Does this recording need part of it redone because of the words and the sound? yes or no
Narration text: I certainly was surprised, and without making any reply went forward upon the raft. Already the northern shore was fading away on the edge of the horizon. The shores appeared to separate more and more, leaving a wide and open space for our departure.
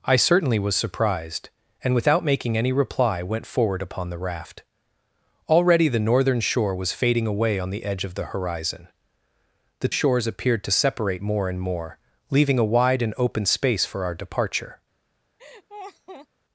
yes